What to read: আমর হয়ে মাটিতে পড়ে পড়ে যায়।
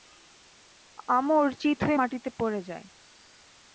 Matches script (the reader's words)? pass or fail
fail